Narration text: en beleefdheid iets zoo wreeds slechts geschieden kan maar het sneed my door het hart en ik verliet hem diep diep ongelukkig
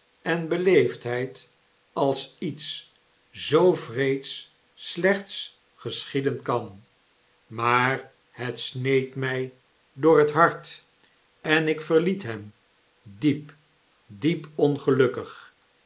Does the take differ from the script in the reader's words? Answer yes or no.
yes